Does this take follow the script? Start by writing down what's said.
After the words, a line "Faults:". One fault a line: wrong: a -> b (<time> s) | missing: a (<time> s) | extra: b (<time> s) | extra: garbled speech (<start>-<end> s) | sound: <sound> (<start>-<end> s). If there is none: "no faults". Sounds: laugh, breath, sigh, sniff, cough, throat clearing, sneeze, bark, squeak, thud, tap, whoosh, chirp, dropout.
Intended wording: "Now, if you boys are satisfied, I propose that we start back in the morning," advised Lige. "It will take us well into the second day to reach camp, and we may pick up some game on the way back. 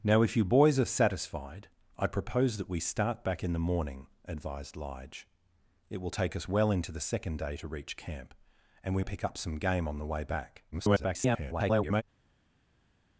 "Now, if you boys are satisfied, I propose that we start back in the morning," advised Lige. "It will take us well into the second day to reach camp, and we pick up some game on the way back. [garbled]
Faults:
missing: may (9.0 s)
extra: garbled speech (10.7-12.0 s)